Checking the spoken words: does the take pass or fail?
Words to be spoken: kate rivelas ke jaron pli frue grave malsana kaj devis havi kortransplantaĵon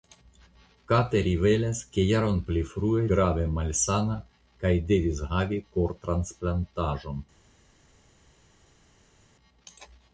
pass